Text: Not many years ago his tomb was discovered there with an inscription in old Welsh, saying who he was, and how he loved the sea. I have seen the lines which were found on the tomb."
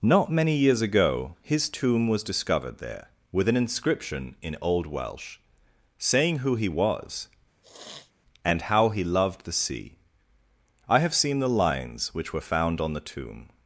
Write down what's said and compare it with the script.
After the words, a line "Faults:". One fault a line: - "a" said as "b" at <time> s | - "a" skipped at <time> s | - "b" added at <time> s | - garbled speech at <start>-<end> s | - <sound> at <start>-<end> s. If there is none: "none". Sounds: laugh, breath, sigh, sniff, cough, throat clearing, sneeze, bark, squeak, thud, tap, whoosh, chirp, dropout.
Not many years ago his tomb was discovered there with an inscription in old Welsh, saying who he was, and how he loved the sea. I have seen the lines which were found on the tomb."
Faults:
- sniff at 7.6-8.1 s